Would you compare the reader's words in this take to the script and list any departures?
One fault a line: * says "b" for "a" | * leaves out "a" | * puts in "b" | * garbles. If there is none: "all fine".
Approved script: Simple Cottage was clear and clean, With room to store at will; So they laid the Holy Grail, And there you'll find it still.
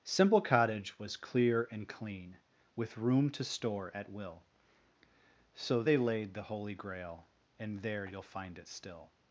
all fine